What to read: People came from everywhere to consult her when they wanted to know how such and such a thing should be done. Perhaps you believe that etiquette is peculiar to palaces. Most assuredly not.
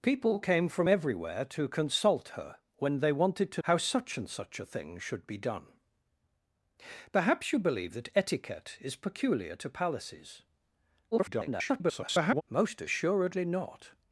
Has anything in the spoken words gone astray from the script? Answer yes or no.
yes